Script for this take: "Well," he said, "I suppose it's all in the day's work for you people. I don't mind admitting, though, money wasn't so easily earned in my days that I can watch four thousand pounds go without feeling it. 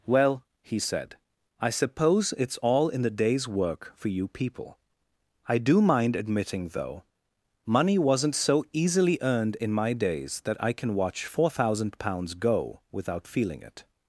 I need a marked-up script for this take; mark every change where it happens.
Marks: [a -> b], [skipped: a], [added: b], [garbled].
"Well," he said, "I suppose it's all in the day's work for you people. I [don't -> do] mind admitting, though, money wasn't so easily earned in my days that I can watch four thousand pounds go without feeling it.